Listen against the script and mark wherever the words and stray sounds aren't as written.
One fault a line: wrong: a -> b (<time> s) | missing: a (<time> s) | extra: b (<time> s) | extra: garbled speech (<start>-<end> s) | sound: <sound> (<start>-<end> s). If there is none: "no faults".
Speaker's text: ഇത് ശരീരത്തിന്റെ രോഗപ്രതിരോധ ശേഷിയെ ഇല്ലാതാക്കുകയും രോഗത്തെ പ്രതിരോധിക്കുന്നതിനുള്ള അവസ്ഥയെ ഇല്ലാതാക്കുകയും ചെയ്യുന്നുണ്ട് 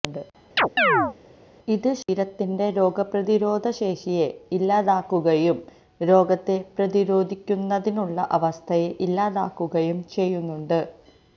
sound: chirp (0.6-1.1 s)